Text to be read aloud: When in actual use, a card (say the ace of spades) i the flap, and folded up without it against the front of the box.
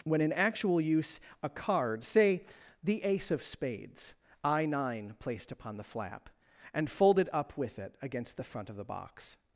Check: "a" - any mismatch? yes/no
no